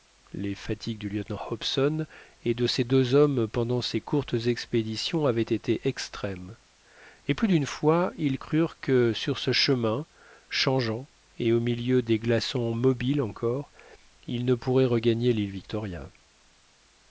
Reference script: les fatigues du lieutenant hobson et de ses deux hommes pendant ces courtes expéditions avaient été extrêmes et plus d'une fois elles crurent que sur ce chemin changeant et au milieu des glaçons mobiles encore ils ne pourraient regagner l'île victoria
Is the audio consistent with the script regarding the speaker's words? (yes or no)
no